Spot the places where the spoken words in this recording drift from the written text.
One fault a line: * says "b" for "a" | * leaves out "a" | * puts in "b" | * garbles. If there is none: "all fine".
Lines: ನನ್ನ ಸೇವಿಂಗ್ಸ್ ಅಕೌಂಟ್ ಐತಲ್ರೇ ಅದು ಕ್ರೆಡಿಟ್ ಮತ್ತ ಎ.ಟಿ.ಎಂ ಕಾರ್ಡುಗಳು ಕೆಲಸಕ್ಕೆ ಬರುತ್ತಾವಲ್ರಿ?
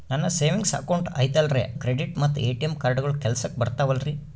* leaves out "ಅದು"